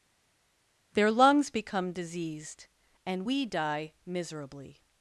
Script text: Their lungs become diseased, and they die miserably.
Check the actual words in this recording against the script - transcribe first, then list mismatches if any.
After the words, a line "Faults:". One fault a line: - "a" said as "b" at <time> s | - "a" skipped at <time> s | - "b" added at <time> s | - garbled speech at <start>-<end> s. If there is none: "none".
Their lungs become diseased, and we die miserably.
Faults:
- "they" said as "we" at 3.2 s